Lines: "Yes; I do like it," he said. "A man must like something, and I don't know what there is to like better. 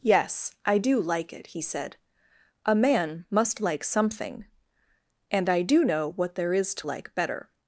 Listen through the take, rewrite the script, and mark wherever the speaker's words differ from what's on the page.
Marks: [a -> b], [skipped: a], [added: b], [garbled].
"Yes; I do like it," he said. "A man must like something, and I [don't -> do] know what there is to like better.